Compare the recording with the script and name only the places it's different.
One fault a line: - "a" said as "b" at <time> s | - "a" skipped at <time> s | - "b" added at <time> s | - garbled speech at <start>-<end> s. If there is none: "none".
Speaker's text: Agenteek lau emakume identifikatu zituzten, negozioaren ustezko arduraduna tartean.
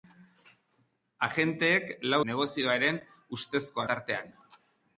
- "emakume identifikatu zituzten" skipped at 2.2 s
- "arduraduna" skipped at 3.8 s